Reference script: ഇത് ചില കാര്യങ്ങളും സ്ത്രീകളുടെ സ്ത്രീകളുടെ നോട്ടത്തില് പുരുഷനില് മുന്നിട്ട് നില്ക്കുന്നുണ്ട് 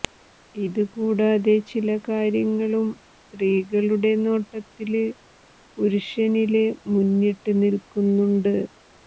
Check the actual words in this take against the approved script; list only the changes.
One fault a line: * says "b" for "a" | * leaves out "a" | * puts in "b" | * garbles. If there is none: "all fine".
* puts in "കൂടാതെ"
* leaves out "സ്ത്രീകളുടെ"